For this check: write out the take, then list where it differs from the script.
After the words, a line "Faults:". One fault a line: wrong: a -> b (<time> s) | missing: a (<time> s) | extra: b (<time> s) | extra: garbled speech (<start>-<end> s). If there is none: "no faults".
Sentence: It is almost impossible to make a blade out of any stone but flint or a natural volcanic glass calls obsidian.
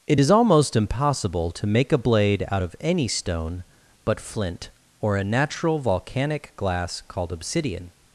It is almost impossible to make a blade out of any stone but flint or a natural volcanic glass called obsidian.
Faults:
wrong: calls -> called (7.1 s)